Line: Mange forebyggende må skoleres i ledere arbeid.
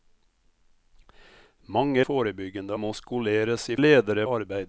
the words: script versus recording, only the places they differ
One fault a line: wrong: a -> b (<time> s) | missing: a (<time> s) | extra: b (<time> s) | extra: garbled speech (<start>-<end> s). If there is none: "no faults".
no faults